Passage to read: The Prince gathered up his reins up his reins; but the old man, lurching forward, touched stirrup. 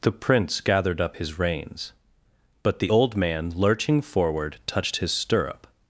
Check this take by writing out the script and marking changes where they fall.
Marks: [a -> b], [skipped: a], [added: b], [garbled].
The Prince gathered up his reins [skipped: up his reins;] but the old man, lurching forward, touched [added: his] stirrup.